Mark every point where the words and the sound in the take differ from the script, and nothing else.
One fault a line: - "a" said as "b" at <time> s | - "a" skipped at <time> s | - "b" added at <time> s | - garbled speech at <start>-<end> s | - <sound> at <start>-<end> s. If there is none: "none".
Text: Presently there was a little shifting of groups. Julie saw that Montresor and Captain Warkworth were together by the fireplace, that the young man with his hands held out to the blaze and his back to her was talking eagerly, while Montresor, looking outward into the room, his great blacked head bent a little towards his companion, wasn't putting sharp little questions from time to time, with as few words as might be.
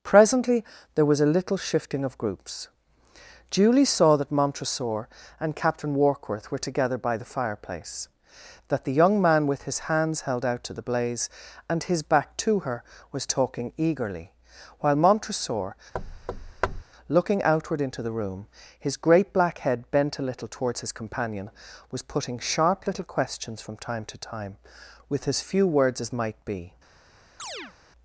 - thud at 15.9-16.8 s
- "blacked" said as "black" at 19.3 s
- "wasn't" said as "was" at 21.9 s
- chirp at 27.4-27.7 s